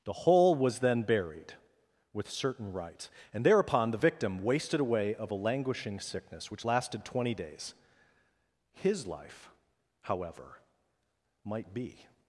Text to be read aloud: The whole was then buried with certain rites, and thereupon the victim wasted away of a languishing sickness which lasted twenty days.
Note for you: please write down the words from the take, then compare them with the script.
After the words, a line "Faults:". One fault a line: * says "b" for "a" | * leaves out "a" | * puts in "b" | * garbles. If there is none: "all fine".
The whole was then buried with certain rites, and thereupon the victim wasted away of a languishing sickness which lasted twenty days. His life, however, might be
Faults:
* puts in "His life however might be"